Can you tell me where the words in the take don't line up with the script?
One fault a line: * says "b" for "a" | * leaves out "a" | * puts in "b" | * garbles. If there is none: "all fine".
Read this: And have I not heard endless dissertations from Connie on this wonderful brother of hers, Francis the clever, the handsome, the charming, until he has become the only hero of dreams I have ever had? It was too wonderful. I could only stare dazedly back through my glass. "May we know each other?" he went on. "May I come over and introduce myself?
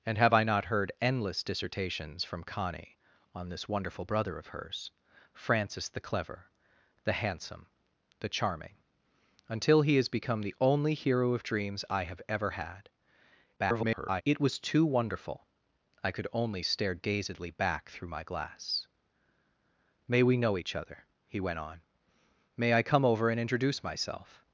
* garbles